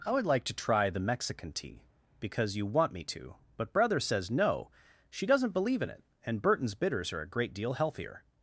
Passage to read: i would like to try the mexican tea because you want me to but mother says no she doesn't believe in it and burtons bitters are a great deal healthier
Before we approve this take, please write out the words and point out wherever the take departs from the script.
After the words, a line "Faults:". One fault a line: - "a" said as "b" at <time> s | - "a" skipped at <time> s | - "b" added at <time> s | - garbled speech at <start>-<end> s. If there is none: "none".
i would like to try the mexican tea because you want me to but brother says no she doesn't believe in it and burtons bitters are a great deal healthier
Faults:
- "mother" said as "brother" at 3.7 s